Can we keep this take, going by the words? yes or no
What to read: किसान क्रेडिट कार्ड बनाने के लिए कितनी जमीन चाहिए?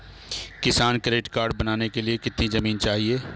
yes